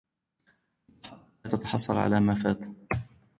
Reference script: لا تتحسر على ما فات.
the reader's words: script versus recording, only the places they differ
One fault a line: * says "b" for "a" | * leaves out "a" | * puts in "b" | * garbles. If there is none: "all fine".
all fine